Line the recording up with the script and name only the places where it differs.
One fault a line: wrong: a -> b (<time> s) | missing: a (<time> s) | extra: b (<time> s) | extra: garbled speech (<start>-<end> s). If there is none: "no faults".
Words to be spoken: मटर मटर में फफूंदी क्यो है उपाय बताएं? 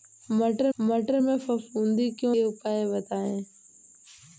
no faults